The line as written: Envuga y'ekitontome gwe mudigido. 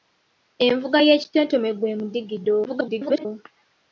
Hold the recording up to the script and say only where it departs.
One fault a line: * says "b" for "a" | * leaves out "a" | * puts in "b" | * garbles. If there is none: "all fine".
* garbles